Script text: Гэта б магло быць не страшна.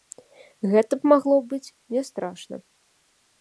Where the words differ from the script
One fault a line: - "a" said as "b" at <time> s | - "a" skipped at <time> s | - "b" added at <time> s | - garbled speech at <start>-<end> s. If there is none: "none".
none